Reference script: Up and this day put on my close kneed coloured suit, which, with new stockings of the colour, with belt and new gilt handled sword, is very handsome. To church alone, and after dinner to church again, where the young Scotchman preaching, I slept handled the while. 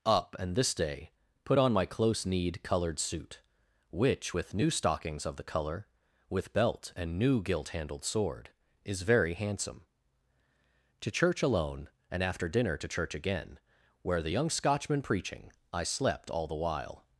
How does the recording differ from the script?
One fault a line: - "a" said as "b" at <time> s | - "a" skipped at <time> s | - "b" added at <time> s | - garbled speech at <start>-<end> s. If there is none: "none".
- "handled" said as "all" at 16.3 s